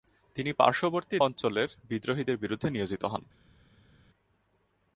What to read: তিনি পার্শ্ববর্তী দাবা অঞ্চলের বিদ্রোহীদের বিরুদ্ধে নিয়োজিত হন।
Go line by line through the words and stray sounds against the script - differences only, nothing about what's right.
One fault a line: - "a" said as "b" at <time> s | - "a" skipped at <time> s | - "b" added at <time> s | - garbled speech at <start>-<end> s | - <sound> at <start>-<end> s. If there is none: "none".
- "দাবা" skipped at 1.2 s